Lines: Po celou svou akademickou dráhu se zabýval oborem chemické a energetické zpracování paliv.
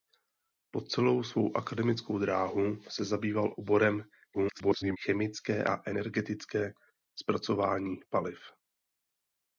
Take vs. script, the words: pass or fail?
fail